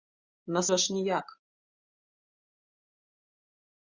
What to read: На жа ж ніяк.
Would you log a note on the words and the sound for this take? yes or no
no